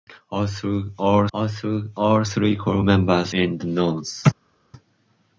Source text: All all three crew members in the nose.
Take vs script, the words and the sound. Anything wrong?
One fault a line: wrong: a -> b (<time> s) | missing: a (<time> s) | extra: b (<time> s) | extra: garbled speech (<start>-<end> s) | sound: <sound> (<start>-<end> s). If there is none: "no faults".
no faults